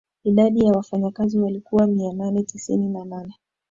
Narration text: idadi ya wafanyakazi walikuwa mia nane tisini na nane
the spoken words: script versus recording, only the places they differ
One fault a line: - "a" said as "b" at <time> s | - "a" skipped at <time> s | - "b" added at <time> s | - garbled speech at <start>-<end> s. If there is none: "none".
none